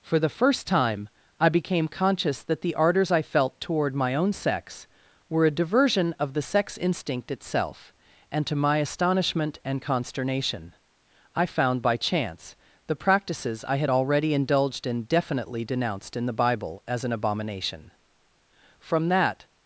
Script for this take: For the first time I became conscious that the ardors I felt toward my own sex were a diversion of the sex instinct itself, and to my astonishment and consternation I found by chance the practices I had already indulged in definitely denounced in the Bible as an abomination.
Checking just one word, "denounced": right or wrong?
right